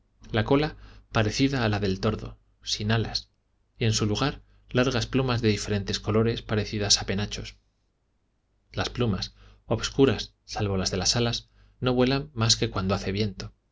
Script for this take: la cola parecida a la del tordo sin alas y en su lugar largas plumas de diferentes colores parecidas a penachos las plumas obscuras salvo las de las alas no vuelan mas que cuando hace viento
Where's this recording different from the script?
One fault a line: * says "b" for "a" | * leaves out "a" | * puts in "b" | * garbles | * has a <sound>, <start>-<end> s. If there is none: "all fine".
all fine